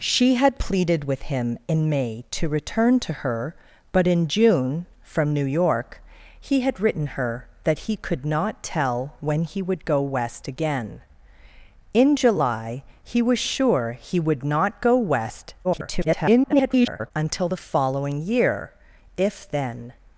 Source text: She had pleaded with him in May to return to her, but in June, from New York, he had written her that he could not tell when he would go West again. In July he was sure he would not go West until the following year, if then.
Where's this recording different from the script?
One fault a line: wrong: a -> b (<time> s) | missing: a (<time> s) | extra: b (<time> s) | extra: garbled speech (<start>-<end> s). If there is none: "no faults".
extra: garbled speech (15.6-17.1 s)